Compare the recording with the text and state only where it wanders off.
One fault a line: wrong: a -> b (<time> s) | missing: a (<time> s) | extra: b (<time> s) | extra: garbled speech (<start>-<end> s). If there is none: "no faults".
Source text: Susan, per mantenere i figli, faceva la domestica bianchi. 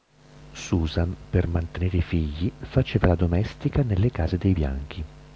extra: nelle case dei (3.8 s)